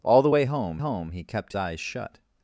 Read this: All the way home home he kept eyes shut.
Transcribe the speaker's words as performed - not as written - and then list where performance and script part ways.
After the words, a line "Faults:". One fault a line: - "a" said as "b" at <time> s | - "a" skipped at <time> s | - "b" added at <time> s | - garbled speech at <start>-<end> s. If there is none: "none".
All the way home home he kept eyes shut.
Faults:
none